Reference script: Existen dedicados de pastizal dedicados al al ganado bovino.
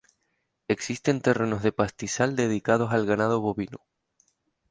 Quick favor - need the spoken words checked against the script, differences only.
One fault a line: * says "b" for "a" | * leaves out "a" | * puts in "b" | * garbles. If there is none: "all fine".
* says "terrenos" for "dedicados"
* leaves out "al"